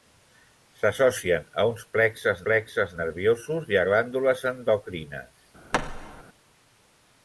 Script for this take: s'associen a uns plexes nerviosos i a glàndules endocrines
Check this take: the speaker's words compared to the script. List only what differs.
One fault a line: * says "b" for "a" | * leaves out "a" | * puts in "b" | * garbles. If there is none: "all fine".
* puts in "plexes"